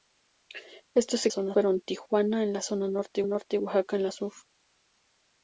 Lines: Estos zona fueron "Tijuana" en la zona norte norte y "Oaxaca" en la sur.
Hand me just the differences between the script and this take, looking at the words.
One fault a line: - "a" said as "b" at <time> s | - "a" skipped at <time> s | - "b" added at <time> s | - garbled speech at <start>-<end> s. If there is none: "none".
none